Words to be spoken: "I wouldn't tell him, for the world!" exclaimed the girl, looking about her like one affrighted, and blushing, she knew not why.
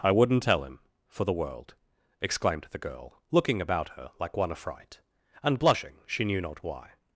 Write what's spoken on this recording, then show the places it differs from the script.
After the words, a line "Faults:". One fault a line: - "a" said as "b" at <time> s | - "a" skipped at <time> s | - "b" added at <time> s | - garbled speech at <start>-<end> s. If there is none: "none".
"I wouldn't tell him, for the world!" exclaimed the girl, looking about her like one affright, and blushing, she knew not why.
Faults:
- "affrighted" said as "affright" at 4.5 s